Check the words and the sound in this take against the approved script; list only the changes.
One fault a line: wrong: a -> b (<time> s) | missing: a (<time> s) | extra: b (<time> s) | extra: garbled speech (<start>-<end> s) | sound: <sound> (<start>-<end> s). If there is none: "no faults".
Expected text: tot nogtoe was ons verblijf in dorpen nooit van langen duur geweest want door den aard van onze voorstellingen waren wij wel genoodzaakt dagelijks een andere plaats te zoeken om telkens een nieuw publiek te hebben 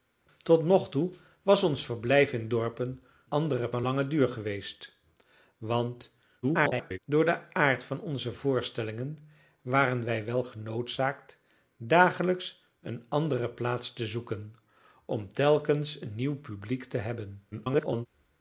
wrong: nooit -> andere (3.3 s)
extra: garbled speech (6.4-7.0 s)
extra: garbled speech (17.5-18.1 s)